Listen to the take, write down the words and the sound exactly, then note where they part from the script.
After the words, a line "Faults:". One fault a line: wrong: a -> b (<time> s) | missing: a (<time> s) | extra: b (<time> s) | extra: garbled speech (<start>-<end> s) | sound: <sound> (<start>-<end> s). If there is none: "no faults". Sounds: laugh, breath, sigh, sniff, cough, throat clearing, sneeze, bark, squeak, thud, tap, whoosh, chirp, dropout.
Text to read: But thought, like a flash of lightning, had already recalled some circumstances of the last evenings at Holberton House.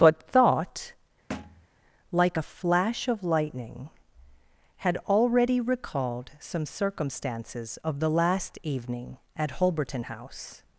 But thought, like a flash of lightning, had already recalled some circumstances of the last evening at Holberton House.
Faults:
sound: thud (1.3-1.7 s)
wrong: evenings -> evening (8.6 s)